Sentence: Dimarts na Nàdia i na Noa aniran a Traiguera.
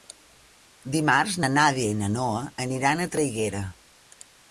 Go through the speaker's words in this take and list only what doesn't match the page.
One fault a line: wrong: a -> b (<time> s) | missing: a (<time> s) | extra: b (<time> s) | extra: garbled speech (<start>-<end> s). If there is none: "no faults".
no faults